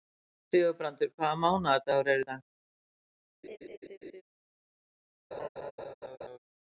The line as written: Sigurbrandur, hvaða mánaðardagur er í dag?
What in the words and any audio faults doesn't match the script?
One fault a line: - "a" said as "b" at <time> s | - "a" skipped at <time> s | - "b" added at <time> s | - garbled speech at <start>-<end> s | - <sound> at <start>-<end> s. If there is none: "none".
- laugh at 3.4-4.2 s
- laugh at 5.3-6.4 s